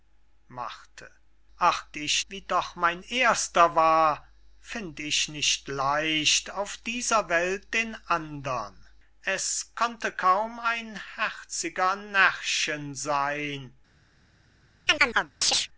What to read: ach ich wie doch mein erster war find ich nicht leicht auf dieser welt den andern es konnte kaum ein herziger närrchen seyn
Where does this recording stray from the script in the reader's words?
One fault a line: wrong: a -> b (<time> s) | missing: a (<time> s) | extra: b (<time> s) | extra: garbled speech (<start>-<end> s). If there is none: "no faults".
no faults